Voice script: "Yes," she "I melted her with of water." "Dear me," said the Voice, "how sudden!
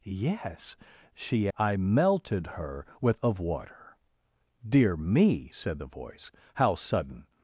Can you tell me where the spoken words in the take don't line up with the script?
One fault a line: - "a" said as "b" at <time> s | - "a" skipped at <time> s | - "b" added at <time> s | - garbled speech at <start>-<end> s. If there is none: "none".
none